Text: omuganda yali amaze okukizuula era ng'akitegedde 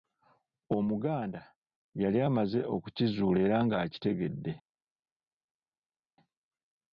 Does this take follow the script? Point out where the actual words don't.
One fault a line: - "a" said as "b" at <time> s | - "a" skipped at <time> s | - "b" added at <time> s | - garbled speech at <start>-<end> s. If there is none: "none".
none